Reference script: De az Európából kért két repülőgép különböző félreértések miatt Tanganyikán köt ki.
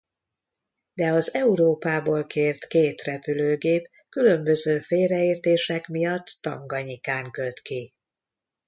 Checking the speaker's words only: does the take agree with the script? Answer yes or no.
yes